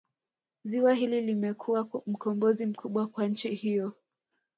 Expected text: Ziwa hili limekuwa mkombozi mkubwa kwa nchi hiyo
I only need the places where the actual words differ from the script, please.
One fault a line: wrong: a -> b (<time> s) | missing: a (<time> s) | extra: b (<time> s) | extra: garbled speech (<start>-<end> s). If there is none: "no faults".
no faults